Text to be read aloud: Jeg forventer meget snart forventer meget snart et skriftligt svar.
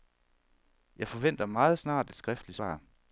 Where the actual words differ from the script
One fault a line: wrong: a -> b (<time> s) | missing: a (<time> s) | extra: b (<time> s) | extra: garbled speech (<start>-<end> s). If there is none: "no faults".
missing: forventer meget snart (2.1 s)